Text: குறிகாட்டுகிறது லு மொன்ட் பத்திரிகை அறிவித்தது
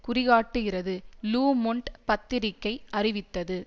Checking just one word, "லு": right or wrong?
right